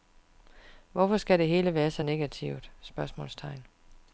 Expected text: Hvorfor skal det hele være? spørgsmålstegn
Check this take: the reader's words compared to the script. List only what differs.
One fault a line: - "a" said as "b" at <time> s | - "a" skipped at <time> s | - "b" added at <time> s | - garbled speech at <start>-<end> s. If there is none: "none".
- "så negativt" added at 1.9 s